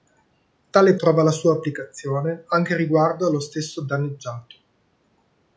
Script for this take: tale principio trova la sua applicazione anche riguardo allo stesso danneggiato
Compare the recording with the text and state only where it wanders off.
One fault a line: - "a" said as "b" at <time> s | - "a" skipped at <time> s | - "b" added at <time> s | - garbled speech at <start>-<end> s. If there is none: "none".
- "principio" skipped at 0.9 s